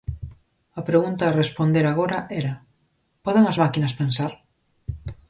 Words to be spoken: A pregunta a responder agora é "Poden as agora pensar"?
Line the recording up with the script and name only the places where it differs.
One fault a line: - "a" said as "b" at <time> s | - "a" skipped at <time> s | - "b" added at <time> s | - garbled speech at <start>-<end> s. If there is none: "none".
- "é" said as "era" at 2.4 s
- "agora" said as "máquinas" at 3.6 s